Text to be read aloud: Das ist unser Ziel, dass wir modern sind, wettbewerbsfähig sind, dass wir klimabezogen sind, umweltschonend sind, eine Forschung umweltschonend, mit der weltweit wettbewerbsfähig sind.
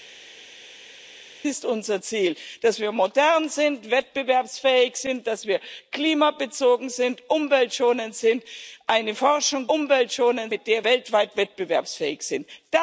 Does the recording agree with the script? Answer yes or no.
yes